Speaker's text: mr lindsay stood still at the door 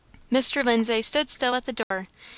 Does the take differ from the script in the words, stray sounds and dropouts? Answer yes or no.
yes